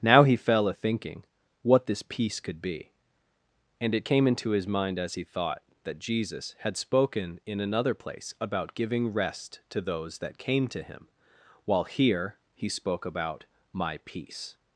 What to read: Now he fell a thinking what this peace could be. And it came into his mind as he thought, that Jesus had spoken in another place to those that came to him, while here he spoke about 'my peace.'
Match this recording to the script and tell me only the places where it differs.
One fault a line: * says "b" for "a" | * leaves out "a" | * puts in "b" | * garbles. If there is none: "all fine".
* puts in "about giving rest"